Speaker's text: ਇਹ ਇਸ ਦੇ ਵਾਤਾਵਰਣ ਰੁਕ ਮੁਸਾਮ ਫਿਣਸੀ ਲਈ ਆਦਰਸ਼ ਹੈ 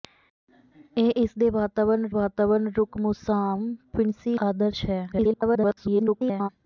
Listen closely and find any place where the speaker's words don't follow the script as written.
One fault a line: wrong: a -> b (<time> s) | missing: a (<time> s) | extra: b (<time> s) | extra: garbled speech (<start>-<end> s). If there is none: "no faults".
extra: ਵਾਤਾਵਰਣ (2.1 s)
missing: ਲਈ (4.4 s)
extra: garbled speech (5.1-6.5 s)